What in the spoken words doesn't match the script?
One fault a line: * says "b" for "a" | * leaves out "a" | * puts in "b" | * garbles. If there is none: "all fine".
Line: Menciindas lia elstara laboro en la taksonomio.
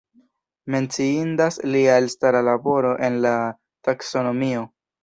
all fine